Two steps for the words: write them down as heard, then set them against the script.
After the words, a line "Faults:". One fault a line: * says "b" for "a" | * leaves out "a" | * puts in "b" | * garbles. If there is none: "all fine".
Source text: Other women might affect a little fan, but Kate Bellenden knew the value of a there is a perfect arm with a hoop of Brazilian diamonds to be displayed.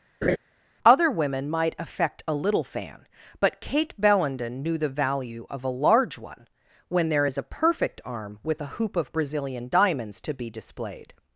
Other women might affect a little fan, but Kate Bellenden knew the value of a large one, when there is a perfect arm with a hoop of Brazilian diamonds to be displayed.
Faults:
* puts in "large one when"